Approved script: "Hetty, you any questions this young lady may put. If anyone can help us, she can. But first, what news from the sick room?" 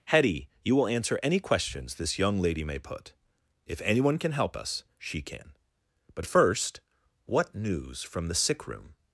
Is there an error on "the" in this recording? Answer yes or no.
no